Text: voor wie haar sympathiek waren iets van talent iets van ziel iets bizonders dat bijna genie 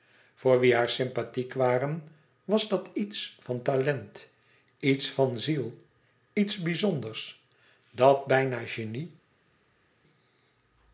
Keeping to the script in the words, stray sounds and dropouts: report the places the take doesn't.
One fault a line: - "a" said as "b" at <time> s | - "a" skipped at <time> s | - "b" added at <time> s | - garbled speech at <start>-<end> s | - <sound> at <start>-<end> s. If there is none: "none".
- "was dat" added at 2.4 s